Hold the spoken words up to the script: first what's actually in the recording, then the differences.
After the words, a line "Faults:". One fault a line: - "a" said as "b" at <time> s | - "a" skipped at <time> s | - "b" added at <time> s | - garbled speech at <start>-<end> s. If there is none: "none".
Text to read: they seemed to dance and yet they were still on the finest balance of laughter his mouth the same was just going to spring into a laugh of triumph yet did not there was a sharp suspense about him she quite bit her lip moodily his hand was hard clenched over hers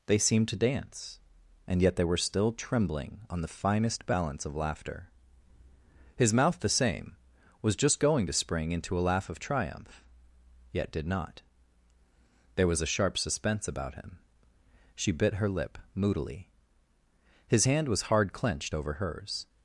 they seemed to dance and yet they were still trembling on the finest balance of laughter his mouth the same was just going to spring into a laugh of triumph yet did not there was a sharp suspense about him she bit her lip moodily his hand was hard clenched over hers
Faults:
- "trembling" added at 2.5 s
- "quite" skipped at 15.1 s